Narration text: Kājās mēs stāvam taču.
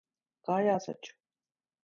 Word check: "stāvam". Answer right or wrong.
wrong